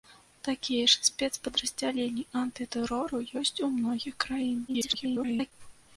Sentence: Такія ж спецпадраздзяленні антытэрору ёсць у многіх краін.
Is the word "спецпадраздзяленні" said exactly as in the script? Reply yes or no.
yes